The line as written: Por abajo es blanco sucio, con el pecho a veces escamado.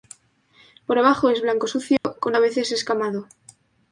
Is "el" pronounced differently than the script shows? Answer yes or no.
yes